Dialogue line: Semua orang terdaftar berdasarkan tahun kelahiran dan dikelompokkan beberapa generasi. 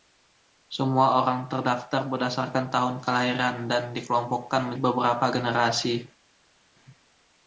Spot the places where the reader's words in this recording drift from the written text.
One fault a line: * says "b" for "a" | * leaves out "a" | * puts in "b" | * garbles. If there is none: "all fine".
all fine